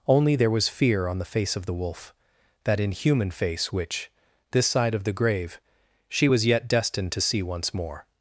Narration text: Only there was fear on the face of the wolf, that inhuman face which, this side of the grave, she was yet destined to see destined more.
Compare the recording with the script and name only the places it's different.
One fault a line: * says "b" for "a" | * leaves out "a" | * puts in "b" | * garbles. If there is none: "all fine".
* says "once" for "destined"